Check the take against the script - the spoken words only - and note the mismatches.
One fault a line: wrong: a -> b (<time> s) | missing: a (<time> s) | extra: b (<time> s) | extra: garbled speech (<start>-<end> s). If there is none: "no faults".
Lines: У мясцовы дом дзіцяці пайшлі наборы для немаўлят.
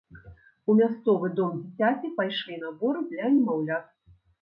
no faults